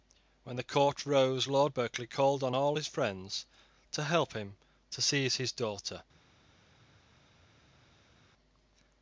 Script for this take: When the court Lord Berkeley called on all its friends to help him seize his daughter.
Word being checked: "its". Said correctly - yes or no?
no